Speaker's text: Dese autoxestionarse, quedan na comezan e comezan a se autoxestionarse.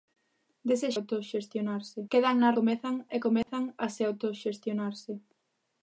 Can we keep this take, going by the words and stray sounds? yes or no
no